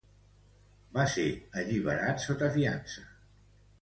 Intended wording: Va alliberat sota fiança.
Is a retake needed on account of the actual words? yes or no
yes